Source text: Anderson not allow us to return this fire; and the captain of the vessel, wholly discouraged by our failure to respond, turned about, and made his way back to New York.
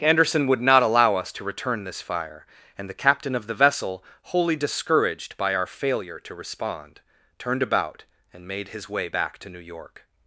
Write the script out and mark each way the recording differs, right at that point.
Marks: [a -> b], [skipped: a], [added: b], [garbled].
Anderson [added: would] not allow us to return this fire; and the captain of the vessel, wholly discouraged by our failure to respond, turned about, and made his way back to New York.